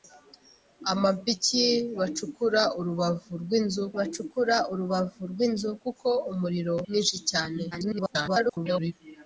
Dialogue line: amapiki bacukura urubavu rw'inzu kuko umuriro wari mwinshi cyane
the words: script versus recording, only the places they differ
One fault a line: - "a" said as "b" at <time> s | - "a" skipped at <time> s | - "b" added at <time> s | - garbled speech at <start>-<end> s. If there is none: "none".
- "bacukura urubavu rw'inzu" added at 4.0 s
- "wari" skipped at 6.7 s
- garbled speech at 7.7-8.9 s